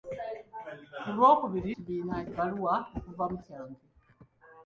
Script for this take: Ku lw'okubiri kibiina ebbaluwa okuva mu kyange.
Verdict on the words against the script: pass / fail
pass